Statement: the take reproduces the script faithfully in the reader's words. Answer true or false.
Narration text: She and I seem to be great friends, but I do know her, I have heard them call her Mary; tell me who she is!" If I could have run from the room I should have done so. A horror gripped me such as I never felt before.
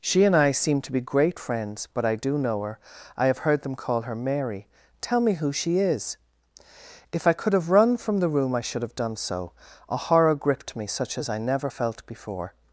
true